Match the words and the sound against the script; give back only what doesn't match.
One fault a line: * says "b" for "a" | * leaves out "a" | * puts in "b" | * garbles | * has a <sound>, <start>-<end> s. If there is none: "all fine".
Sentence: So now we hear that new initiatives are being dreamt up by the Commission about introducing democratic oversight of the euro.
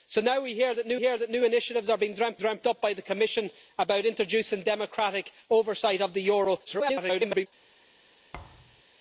* puts in "hear that new"
* puts in "dreamt"
* garbles
* has a thud, 8.3-8.8 s